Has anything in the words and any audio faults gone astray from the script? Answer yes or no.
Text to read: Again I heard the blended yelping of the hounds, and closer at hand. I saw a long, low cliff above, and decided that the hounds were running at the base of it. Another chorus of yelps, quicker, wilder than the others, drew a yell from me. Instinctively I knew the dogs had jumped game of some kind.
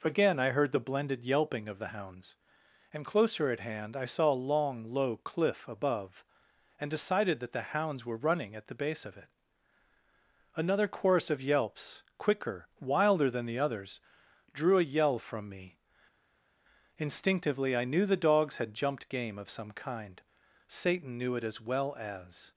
yes